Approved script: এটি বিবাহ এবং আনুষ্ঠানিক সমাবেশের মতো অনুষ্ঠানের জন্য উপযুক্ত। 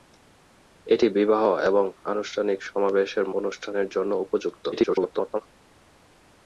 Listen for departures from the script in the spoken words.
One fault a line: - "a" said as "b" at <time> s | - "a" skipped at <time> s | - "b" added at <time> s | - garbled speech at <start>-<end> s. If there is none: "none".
- "মতো" skipped at 3.2 s
- garbled speech at 4.7-5.4 s